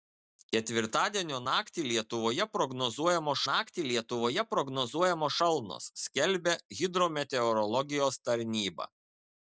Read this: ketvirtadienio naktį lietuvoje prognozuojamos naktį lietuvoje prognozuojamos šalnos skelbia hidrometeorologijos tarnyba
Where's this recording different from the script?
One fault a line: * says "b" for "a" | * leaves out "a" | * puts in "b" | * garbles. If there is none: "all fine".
all fine